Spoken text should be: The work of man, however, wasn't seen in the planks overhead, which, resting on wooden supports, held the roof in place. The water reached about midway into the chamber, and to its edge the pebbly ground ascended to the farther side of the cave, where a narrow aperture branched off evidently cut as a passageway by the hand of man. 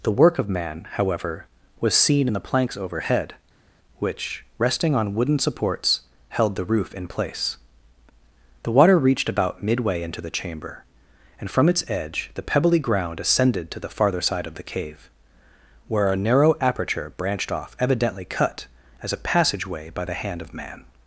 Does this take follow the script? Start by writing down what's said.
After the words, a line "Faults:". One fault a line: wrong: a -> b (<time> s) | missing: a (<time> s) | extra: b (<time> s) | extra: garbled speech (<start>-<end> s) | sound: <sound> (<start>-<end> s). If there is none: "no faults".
The work of man, however, was seen in the planks overhead, which, resting on wooden supports, held the roof in place. The water reached about midway into the chamber, and from its edge the pebbly ground ascended to the farther side of the cave, where a narrow aperture branched off evidently cut as a passageway by the hand of man.
Faults:
wrong: wasn't -> was (1.8 s)
wrong: to -> from (11.5 s)